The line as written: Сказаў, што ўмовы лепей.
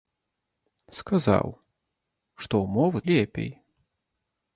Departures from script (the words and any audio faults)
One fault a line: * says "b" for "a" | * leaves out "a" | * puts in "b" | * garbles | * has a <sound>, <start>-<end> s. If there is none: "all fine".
all fine